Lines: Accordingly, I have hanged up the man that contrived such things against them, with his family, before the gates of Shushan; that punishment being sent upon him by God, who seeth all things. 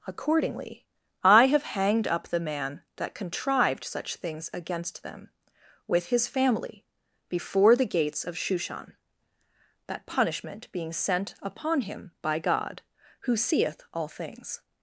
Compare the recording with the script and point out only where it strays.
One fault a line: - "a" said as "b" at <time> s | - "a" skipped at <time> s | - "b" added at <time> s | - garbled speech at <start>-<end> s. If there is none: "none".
none